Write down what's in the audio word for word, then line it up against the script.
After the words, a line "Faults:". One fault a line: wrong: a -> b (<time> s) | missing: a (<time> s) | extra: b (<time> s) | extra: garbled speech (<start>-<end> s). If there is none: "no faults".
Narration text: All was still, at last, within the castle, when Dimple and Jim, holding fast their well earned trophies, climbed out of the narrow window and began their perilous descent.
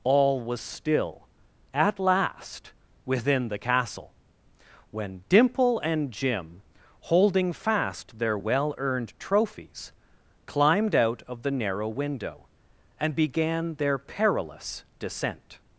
All was still, at last, within the castle, when Dimple and Jim, holding fast their well earned trophies, climbed out of the narrow window and began their perilous descent.
Faults:
no faults